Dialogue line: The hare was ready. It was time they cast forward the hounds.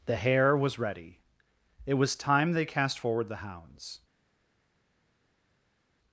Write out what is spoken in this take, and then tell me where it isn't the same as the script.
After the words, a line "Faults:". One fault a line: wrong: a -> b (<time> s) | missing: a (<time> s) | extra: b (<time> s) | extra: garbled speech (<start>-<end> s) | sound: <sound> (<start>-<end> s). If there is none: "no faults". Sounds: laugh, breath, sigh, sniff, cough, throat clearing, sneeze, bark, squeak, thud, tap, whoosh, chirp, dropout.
The hare was ready. It was time they cast forward the hounds.
Faults:
no faults